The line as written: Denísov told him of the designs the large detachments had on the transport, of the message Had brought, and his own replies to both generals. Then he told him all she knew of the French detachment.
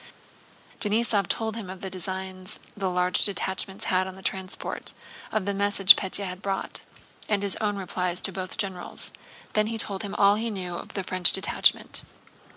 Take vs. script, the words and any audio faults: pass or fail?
fail